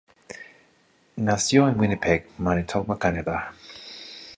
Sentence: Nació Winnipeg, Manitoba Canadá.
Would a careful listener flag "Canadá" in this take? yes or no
no